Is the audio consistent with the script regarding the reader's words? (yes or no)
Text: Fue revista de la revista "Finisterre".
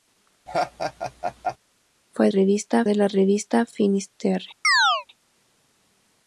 yes